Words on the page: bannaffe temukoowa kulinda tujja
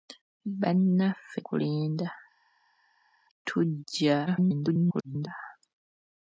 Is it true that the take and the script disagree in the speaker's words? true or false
true